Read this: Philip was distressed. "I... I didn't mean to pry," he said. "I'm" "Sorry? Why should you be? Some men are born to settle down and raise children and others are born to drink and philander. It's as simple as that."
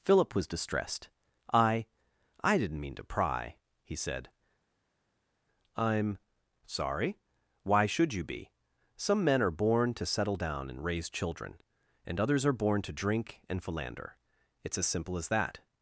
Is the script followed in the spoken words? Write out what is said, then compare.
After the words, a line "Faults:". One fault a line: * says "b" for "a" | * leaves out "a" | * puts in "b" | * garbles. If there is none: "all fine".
Philip was distressed. "I... I didn't mean to pry," he said. "I'm" "Sorry? Why should you be? Some men are born to settle down and raise children and others are born to drink and philander. It's as simple as that."
Faults:
all fine